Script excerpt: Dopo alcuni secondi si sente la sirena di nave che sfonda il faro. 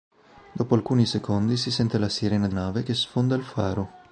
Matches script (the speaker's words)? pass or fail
pass